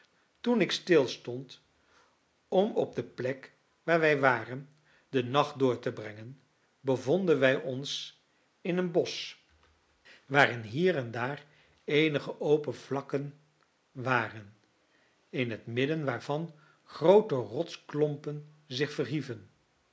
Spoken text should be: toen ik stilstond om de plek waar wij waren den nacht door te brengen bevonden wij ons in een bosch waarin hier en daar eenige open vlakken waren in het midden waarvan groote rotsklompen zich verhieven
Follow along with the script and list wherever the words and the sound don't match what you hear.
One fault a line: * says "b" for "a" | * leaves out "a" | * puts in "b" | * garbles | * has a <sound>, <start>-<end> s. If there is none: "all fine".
* puts in "op"